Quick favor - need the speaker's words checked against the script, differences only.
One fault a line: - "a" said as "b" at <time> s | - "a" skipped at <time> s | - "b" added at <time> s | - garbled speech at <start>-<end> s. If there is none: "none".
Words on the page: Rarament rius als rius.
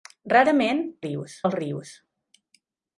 none